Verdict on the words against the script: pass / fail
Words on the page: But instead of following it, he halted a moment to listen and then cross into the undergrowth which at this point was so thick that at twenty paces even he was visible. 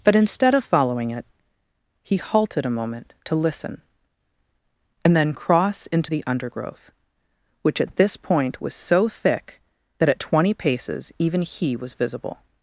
pass